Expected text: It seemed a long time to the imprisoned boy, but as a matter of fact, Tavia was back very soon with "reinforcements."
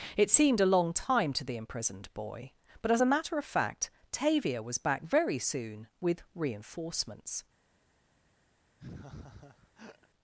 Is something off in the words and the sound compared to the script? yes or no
yes